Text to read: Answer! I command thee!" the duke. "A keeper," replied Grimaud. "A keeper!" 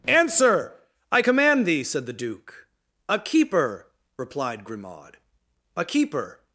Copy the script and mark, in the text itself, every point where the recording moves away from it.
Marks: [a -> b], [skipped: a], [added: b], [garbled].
Answer! I command thee!" [added: said] the duke. "A keeper," replied Grimaud. "A keeper!"